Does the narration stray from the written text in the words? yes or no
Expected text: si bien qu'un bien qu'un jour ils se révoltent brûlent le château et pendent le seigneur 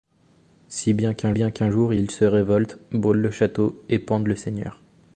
no